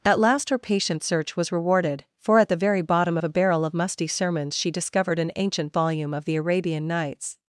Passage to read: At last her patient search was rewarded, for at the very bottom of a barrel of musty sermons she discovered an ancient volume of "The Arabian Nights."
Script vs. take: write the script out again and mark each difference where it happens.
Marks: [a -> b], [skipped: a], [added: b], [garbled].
At last her patient search was rewarded, for at the very bottom of a barrel of musty sermons she discovered an ancient volume of "The Arabian Nights."